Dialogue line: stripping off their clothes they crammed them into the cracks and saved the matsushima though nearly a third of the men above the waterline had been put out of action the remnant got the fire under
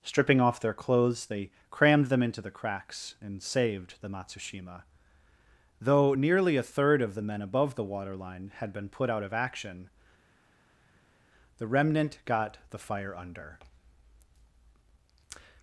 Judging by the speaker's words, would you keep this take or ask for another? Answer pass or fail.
pass